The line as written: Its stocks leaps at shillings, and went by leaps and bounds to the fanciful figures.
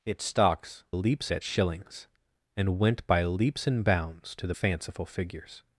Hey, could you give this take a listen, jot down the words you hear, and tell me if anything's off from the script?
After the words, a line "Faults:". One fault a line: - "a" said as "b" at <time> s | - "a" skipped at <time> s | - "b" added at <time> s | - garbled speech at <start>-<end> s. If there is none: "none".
Its stocks leaps at shillings, and went by leaps and bounds to the fanciful figures.
Faults:
none